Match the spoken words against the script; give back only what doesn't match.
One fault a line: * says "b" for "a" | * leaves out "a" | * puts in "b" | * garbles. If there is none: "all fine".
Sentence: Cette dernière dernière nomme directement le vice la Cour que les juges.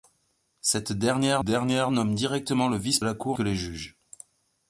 all fine